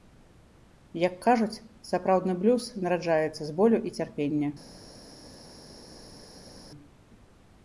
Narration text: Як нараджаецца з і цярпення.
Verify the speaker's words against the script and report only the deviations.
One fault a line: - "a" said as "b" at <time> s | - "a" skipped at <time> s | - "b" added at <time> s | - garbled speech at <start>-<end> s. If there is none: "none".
- "кажуць сапраўдны блюз" added at 1.2 s
- "болю" added at 3.6 s